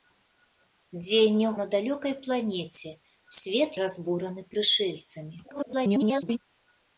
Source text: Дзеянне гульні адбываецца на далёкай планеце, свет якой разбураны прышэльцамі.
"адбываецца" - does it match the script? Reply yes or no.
no